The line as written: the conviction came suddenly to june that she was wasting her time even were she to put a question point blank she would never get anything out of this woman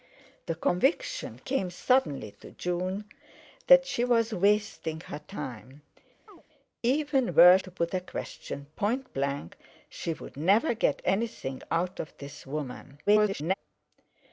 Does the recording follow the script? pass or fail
fail